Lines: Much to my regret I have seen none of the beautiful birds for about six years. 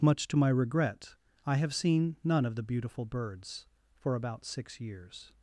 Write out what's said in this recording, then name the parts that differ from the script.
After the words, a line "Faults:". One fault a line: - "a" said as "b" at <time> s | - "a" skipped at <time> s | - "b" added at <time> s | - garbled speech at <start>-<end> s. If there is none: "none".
Much to my regret I have seen none of the beautiful birds for about six years.
Faults:
none